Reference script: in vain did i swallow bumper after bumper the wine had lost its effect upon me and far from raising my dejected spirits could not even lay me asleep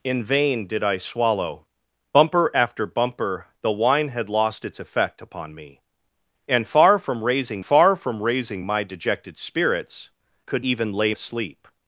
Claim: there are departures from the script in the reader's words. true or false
true